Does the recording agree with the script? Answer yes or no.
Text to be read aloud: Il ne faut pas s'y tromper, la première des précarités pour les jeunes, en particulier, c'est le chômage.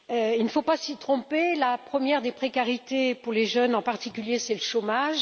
yes